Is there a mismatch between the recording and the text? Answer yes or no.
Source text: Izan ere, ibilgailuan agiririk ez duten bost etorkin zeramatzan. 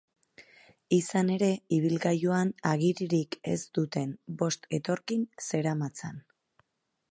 no